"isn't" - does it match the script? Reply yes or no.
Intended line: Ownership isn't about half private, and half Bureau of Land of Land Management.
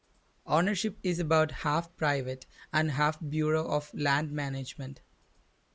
no